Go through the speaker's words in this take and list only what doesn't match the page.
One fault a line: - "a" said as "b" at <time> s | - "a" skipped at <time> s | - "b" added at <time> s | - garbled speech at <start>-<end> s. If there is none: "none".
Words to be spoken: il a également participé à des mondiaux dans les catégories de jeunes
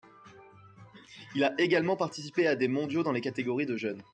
none